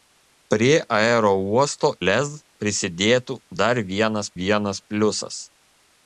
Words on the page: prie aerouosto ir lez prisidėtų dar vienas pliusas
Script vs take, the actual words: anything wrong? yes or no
yes